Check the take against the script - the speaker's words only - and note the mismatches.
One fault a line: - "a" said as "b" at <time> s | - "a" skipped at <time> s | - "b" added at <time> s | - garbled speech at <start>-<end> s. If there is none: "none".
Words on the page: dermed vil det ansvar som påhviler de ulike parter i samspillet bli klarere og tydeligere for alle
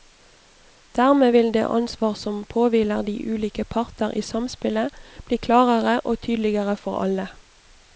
none